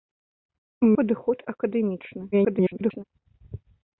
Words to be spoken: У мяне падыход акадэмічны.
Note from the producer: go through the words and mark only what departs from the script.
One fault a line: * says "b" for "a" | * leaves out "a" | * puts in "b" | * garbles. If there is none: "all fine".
* leaves out "мяне"
* garbles